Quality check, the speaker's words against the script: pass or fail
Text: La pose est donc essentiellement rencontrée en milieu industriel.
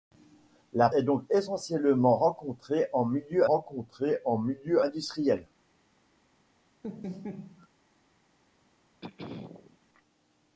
fail